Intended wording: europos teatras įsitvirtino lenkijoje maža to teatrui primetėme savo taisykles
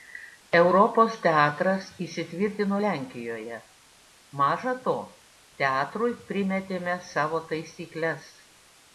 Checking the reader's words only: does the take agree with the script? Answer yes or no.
yes